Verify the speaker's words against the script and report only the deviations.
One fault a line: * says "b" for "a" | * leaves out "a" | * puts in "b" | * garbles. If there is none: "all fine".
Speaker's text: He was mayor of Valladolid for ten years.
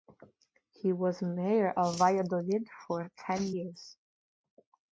all fine